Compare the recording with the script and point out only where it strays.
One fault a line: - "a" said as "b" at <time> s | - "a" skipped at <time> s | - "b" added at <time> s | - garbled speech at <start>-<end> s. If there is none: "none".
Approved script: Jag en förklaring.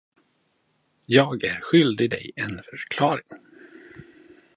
- "är skyldig dig" added at 1.4 s